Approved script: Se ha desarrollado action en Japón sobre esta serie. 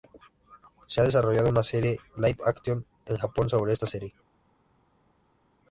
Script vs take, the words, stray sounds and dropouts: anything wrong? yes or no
yes